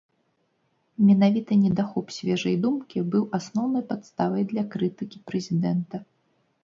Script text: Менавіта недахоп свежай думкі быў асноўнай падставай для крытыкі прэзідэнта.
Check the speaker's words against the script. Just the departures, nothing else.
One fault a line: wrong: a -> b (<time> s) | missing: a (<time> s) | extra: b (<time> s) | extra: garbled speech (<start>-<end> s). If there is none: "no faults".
no faults